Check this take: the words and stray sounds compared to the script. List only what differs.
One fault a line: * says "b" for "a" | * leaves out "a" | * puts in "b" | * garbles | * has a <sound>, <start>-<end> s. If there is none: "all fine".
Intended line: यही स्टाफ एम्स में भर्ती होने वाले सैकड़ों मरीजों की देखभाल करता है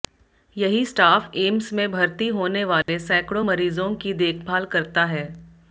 * has a dropout, 2.8-2.9 s